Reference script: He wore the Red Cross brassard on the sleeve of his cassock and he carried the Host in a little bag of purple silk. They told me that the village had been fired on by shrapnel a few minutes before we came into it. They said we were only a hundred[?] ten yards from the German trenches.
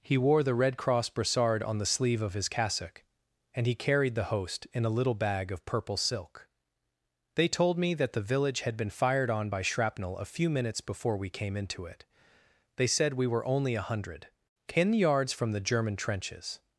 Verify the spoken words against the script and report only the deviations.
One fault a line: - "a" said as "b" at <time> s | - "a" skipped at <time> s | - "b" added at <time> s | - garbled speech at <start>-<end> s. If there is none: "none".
none